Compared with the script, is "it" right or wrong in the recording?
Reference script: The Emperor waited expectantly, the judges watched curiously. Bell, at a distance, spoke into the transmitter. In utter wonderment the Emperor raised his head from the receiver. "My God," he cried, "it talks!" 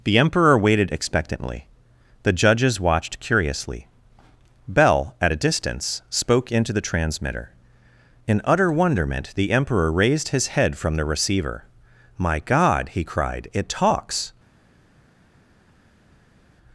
right